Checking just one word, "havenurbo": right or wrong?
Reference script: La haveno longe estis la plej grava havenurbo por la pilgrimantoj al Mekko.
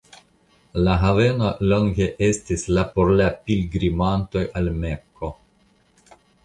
wrong